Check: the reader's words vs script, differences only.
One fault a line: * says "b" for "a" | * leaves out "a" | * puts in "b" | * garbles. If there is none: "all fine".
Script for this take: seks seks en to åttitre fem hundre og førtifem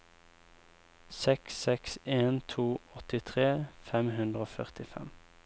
all fine